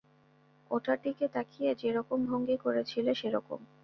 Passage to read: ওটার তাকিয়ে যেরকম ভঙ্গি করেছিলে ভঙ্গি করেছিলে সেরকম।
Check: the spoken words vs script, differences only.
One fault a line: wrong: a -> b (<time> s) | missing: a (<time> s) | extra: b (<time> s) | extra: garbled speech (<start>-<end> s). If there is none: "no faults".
extra: দিকে (1.0 s)
missing: ভঙ্গি করেছিলে (3.1 s)